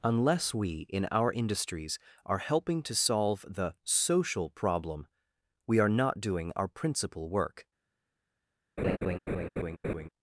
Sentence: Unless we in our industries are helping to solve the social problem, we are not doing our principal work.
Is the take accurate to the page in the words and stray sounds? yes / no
no